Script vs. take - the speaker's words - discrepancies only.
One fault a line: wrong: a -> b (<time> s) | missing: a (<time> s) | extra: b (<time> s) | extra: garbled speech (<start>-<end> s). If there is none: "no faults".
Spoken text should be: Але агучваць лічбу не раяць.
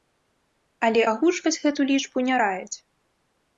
extra: гэту (1.7 s)